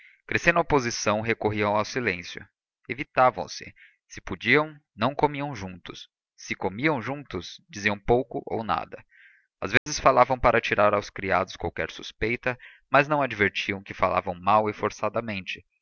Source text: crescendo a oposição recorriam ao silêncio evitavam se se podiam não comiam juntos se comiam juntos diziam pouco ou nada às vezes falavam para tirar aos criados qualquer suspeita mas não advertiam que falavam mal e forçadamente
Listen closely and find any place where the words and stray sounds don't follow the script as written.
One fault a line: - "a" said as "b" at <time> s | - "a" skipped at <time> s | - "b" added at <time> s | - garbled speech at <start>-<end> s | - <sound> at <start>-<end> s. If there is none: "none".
- dropout at 9.8-9.9 s